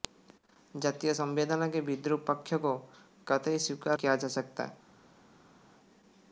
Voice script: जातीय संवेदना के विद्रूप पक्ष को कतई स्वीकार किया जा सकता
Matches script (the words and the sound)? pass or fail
pass